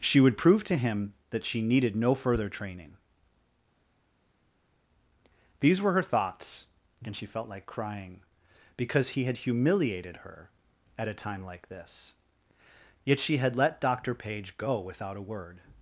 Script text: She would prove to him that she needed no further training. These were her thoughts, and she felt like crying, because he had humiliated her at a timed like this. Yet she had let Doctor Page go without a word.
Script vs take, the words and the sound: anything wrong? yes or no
yes